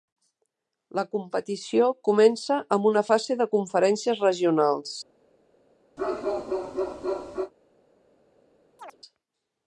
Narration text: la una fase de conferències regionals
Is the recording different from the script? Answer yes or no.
yes